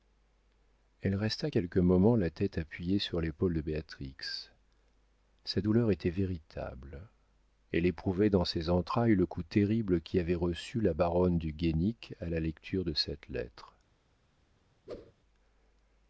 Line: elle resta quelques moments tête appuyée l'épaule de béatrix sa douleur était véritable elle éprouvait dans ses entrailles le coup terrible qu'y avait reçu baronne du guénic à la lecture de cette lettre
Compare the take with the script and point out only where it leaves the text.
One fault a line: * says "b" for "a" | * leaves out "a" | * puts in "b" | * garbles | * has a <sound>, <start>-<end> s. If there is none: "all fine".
* puts in "la"
* puts in "sur"
* puts in "la"
* has a whoosh, 14.9-15.1 s